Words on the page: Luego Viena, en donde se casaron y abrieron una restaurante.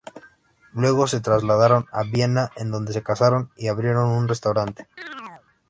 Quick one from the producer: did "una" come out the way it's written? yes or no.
no